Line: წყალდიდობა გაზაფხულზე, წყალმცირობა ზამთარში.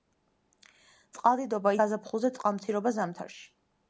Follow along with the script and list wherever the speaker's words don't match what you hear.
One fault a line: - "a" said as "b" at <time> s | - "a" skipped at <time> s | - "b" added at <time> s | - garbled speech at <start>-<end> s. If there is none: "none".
none